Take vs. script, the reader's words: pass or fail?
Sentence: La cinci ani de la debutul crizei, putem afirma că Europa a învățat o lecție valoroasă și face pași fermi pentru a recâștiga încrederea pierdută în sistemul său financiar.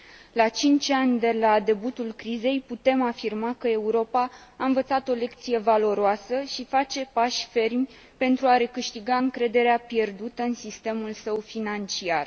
pass